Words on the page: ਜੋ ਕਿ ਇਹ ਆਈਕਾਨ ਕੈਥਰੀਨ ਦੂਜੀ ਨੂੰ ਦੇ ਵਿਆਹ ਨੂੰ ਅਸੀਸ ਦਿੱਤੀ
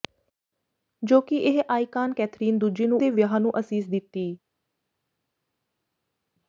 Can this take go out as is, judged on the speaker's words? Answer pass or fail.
pass